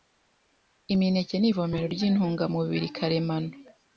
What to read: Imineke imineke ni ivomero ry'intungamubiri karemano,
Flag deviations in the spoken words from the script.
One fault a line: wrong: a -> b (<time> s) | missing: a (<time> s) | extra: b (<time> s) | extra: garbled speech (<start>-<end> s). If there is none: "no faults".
missing: imineke (1.4 s)